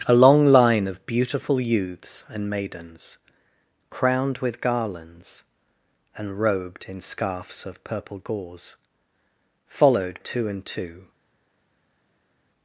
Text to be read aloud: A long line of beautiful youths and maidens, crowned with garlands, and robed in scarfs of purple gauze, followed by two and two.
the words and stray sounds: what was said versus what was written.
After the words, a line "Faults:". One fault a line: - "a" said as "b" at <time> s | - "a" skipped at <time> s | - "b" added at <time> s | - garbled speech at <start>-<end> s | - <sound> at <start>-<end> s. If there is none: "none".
A long line of beautiful youths and maidens, crowned with garlands, and robed in scarfs of purple gauze, followed two and two.
Faults:
- "by" skipped at 10.2 s